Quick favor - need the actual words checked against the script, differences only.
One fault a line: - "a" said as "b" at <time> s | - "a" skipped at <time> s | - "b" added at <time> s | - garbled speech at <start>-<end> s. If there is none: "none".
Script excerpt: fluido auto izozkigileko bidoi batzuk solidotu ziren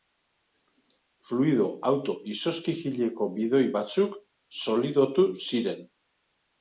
none